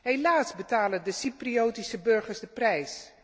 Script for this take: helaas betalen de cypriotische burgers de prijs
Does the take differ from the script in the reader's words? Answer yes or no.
no